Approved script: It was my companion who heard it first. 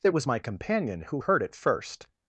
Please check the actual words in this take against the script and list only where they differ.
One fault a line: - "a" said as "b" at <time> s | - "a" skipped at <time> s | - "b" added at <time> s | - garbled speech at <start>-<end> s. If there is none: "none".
none